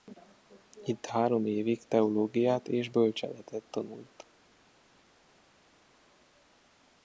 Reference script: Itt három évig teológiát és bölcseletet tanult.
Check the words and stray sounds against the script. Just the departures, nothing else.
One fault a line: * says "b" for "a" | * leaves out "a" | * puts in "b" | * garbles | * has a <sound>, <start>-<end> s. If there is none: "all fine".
all fine